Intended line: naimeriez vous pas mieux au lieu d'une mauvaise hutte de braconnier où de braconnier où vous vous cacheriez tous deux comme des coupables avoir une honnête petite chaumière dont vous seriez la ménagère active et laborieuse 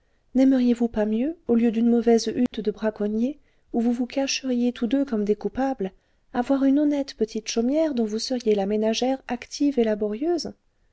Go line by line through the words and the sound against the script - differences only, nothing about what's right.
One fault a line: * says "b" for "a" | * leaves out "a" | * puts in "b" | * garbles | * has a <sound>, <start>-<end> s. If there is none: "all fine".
* has a dropout, 2.5-2.5 s
* leaves out "de braconnier où"